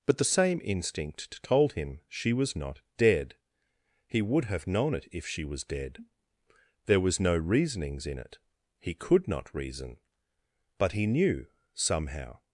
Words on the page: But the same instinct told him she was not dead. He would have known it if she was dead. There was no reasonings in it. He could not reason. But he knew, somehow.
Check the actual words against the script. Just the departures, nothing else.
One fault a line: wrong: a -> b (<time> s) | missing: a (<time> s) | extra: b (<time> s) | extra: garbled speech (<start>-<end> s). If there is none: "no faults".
no faults